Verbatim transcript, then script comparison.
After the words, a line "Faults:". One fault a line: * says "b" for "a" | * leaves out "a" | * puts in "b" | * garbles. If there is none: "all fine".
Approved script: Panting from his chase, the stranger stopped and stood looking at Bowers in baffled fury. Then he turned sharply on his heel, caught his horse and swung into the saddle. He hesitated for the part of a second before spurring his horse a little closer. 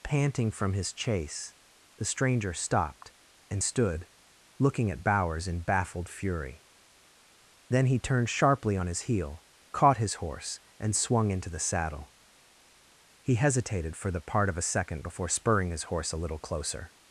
Panting from his chase, the stranger stopped and stood looking at Bowers in baffled fury. Then he turned sharply on his heel, caught his horse and swung into the saddle. He hesitated for the part of a second before spurring his horse a little closer.
Faults:
all fine